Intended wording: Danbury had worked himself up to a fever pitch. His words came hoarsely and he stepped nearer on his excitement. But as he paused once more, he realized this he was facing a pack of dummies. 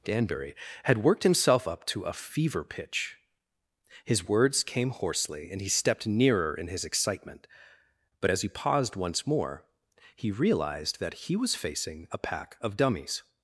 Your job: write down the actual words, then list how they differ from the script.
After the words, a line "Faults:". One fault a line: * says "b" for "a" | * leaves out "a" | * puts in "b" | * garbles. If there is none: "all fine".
Danbury had worked himself up to a fever pitch. His words came hoarsely and he stepped nearer in his excitement. But as he paused once more, he realized that he was facing a pack of dummies.
Faults:
* says "in" for "on"
* says "that" for "this"